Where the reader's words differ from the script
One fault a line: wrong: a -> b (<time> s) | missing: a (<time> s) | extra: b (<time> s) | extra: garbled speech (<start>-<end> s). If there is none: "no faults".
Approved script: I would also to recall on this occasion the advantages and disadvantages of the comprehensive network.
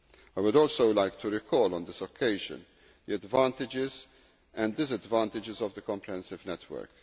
extra: like (0.9 s)